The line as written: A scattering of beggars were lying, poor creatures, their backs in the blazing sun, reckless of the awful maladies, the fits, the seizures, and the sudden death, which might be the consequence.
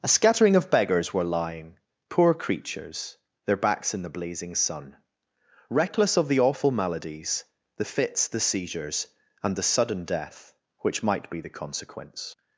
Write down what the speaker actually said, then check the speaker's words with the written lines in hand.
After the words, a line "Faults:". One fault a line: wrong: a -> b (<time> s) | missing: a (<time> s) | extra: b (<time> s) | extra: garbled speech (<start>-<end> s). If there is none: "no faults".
A scattering of beggars were lying, poor creatures, their backs in the blazing sun, reckless of the awful maladies, the fits, the seizures, and the sudden death, which might be the consequence.
Faults:
no faults